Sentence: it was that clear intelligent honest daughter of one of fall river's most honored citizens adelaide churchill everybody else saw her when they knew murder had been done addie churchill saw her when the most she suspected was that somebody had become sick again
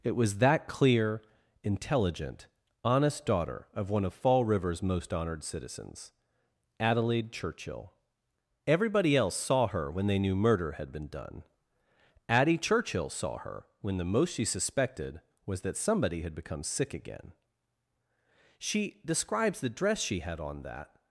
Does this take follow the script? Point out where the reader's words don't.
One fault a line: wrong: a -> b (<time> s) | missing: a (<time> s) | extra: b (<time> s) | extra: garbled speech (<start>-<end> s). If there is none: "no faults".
extra: she describes the dress she had on that (18.6 s)